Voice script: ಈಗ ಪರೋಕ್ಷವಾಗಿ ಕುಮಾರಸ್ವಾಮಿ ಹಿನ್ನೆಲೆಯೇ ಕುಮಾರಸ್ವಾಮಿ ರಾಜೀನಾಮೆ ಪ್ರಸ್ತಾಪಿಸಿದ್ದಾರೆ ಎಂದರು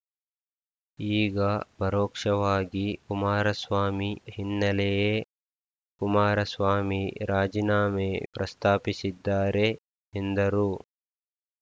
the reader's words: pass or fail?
pass